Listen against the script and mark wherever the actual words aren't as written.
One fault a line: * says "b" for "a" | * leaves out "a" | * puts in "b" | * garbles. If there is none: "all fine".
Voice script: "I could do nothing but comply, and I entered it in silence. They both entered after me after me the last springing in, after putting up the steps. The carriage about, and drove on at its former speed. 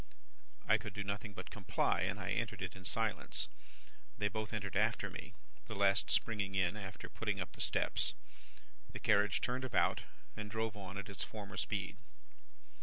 * leaves out "after me"
* puts in "turned"